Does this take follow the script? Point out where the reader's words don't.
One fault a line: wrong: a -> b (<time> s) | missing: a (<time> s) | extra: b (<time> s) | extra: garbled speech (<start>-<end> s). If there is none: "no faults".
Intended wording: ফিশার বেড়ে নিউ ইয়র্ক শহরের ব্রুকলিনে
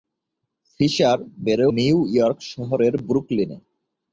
no faults